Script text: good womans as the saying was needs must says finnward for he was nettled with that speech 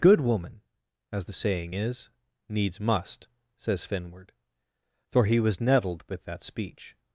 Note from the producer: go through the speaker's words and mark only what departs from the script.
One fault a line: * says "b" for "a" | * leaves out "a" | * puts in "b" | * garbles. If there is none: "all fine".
* says "woman" for "womans"
* says "is" for "was"